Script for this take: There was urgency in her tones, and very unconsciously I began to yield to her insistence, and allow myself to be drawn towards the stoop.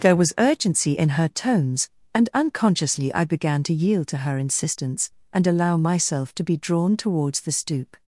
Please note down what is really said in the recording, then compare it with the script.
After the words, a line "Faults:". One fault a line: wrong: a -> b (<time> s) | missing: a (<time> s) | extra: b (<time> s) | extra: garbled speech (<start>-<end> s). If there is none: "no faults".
There was urgency in her tones, and unconsciously I began to yield to her insistence, and allow myself to be drawn towards the stoop.
Faults:
missing: very (2.3 s)